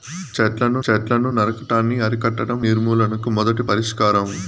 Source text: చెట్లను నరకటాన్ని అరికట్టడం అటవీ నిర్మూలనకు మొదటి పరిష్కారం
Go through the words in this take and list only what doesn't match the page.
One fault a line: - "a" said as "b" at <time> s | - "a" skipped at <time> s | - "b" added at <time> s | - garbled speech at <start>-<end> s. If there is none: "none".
- "చెట్లను" added at 0.8 s
- "అటవీ" skipped at 2.6 s